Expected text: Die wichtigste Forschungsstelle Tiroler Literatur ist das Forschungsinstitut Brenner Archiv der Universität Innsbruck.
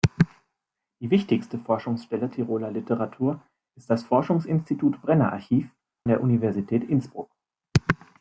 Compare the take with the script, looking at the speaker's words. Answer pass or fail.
pass